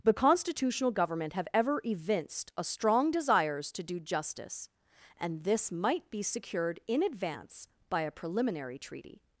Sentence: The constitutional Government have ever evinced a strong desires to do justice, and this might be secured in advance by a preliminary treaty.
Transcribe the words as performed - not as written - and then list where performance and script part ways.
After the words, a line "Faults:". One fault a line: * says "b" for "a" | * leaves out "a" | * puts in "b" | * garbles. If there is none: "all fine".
The constitutional Government have ever evinced a strong desires to do justice, and this might be secured in advance by a preliminary treaty.
Faults:
all fine